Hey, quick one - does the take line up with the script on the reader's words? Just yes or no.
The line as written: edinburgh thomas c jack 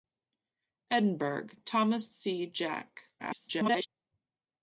no